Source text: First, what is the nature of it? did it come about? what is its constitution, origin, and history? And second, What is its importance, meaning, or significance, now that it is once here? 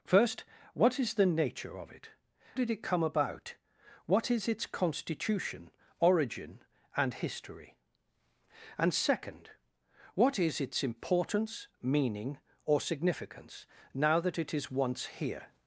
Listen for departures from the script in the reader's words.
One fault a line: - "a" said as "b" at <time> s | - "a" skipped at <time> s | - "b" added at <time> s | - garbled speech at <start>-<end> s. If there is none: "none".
none